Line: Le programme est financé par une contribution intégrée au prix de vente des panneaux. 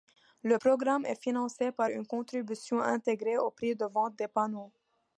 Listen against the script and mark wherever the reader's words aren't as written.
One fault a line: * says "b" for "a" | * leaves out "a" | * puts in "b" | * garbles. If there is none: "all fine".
all fine